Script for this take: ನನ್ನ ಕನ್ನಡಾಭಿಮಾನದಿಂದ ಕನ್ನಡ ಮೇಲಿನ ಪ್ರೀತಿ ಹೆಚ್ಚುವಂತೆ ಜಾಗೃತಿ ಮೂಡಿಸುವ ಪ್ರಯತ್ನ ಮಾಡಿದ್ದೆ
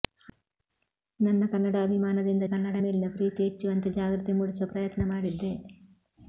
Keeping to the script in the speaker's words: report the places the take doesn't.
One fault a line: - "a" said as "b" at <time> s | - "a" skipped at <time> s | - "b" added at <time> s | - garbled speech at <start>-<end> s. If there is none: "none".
none